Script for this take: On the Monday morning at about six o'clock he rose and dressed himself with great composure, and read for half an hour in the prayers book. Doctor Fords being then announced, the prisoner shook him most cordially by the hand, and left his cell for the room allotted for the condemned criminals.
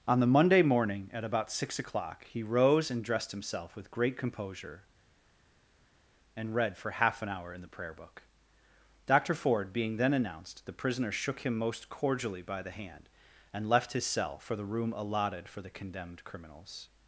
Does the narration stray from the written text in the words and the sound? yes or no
yes